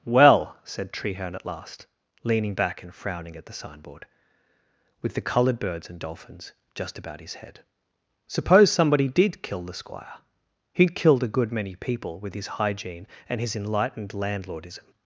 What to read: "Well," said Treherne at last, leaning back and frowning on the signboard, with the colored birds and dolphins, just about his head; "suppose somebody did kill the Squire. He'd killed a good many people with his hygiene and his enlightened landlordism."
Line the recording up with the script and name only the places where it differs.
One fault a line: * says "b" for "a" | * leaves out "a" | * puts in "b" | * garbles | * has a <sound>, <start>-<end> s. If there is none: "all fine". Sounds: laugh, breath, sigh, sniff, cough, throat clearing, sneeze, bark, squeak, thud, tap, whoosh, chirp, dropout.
* says "at" for "on"